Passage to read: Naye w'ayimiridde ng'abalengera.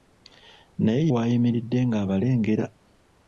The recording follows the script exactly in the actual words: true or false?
true